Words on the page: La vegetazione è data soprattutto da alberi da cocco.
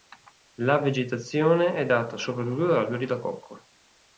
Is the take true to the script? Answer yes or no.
yes